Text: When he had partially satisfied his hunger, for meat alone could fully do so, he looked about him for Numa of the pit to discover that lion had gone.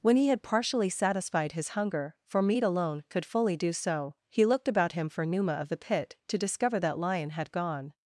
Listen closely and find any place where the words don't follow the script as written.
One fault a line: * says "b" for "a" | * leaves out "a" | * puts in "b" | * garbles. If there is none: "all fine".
all fine